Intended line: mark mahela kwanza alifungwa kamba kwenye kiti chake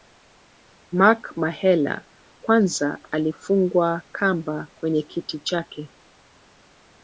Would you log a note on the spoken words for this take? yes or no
no